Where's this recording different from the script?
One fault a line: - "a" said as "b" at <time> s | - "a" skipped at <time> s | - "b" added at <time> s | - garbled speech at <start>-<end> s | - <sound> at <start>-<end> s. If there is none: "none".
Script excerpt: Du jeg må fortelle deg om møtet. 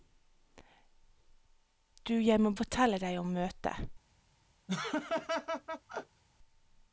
- laugh at 4.7-6.2 s